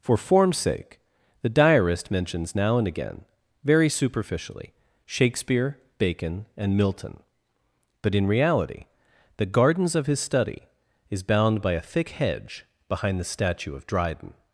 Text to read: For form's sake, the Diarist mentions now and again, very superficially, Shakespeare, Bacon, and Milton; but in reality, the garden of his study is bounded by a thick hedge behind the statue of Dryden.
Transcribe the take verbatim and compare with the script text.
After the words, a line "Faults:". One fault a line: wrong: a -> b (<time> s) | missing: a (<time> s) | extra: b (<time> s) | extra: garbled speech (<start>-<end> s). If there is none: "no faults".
For form's sake, the Diarist mentions now and again, very superficially, Shakespeare, Bacon, and Milton; but in reality, the gardens of his study is bound by a thick hedge behind the statue of Dryden.
Faults:
wrong: garden -> gardens (9.5 s)
wrong: bounded -> bound (11.2 s)